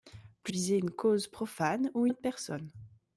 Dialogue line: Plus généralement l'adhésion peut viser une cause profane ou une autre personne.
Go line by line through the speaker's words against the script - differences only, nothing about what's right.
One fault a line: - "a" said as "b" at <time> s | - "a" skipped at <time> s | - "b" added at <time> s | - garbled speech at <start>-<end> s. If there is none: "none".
- "généralement l'adhésion peut" skipped at 0.5 s
- "une" skipped at 2.1 s